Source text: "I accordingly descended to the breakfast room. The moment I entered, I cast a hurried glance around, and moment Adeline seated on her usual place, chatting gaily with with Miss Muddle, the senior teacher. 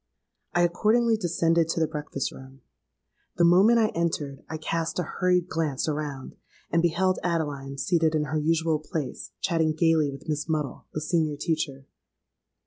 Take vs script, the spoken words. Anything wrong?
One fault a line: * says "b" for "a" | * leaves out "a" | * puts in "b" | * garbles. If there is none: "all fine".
* says "beheld" for "moment"
* says "in" for "on"
* leaves out "with"